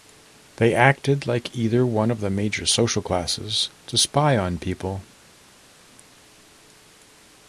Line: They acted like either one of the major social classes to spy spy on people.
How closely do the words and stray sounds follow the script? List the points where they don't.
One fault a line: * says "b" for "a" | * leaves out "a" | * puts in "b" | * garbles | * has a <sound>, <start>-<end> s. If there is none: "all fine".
* leaves out "spy"